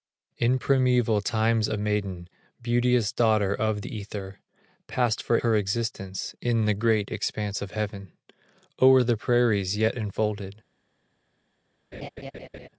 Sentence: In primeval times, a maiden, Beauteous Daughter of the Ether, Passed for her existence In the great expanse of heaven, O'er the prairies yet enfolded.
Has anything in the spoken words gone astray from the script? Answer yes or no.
no